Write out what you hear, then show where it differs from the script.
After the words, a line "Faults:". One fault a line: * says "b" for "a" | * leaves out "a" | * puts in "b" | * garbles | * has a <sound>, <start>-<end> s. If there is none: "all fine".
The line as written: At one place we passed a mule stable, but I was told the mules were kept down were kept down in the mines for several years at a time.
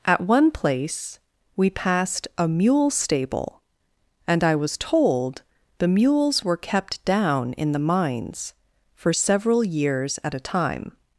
At one place we passed a mule stable, and I was told the mules were kept down in the mines for several years at a time.
Faults:
* says "and" for "but"
* leaves out "were kept down"